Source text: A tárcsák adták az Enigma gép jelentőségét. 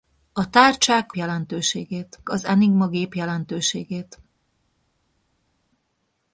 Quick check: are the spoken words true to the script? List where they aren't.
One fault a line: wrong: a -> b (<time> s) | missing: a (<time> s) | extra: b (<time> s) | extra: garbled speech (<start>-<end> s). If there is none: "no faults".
wrong: adták -> jelentőségét (1.1 s)